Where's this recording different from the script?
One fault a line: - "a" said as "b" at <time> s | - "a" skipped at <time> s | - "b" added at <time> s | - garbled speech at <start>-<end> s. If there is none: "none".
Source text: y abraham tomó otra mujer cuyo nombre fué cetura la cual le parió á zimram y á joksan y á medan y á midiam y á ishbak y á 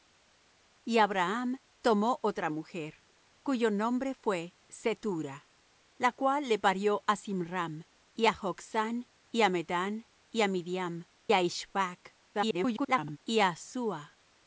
- "y" skipped at 11.1 s
- garbled speech at 12.3-13.2 s